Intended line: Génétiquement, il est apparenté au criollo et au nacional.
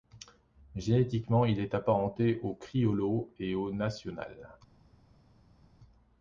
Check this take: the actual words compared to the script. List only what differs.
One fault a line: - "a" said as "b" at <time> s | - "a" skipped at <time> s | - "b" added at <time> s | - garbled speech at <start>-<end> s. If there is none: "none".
none